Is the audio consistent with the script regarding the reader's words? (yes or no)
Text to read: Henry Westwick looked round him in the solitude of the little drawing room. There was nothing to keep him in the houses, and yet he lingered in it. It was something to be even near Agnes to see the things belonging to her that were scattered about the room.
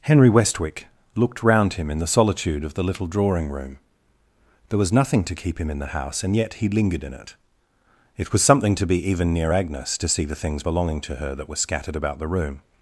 no